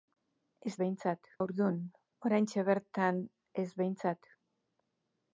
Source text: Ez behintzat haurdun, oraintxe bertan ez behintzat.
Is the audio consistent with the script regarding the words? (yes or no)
yes